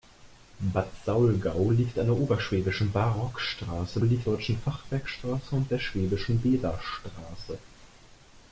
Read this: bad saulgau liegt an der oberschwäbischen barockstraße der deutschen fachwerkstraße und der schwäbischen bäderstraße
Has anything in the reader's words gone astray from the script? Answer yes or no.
yes